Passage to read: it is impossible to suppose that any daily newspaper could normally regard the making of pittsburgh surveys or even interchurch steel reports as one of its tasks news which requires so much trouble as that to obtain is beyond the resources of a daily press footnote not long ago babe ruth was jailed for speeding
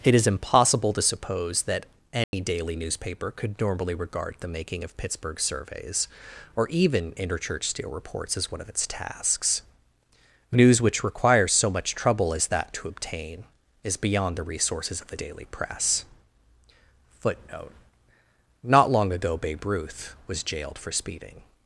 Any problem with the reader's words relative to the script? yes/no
yes